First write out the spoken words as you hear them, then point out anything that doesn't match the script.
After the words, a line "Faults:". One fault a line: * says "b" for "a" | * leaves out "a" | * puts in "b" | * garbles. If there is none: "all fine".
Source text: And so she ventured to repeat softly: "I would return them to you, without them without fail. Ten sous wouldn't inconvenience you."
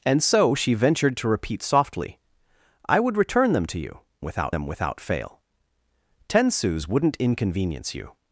And so she ventured to repeat softly: "I would return them to you, without them without fail. Ten sous wouldn't inconvenience you."
Faults:
all fine